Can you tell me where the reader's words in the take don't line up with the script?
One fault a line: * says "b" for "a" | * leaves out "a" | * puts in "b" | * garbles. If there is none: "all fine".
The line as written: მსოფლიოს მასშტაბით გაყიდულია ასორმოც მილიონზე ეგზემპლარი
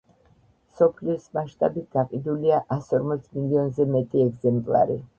* puts in "მეტი"